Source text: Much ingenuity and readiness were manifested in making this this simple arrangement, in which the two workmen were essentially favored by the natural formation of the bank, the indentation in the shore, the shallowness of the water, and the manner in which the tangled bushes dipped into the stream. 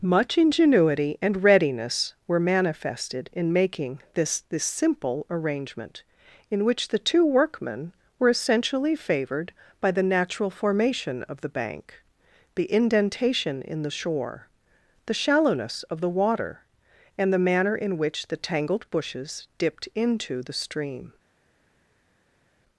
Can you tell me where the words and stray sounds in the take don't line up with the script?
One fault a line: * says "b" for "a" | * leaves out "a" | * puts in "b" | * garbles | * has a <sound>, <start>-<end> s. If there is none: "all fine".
all fine